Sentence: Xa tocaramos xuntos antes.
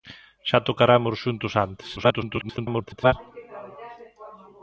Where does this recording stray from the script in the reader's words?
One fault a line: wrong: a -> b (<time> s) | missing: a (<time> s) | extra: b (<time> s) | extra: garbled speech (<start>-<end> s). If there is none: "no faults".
extra: garbled speech (2.0-3.1 s)